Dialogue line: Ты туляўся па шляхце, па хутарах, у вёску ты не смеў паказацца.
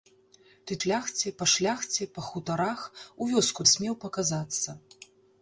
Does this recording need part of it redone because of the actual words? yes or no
yes